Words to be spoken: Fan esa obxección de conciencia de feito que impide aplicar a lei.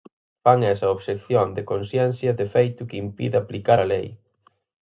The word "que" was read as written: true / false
true